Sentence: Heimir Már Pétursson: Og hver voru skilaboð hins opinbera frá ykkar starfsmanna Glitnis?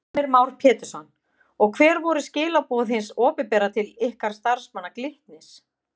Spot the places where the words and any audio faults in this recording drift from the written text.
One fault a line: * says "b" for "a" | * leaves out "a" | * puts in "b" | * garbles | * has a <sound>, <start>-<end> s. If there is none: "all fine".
* says "til" for "frá"